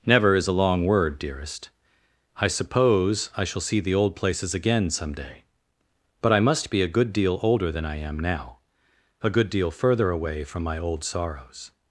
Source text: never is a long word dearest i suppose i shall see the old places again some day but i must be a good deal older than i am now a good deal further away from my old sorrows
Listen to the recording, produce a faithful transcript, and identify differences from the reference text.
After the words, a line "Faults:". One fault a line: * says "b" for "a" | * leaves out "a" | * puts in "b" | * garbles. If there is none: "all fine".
never is a long word dearest i suppose i shall see the old places again some day but i must be a good deal older than i am now a good deal further away from my old sorrows
Faults:
all fine